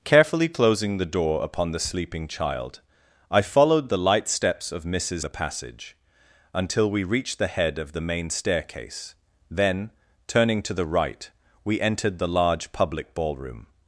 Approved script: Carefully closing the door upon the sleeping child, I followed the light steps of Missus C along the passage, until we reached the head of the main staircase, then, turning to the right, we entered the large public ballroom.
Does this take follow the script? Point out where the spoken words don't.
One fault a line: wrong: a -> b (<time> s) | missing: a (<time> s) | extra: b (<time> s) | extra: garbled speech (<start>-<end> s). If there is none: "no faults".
missing: C along (5.2 s)